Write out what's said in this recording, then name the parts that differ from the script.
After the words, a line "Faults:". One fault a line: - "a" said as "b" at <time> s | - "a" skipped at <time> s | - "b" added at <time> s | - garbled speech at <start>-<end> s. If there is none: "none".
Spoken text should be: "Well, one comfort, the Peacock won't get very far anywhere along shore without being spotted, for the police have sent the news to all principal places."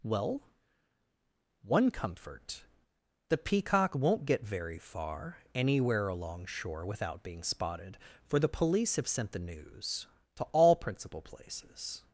"Well, one comfort, the Peacock won't get very far anywhere along shore without being spotted, for the police have sent the news to all principal places."
Faults:
none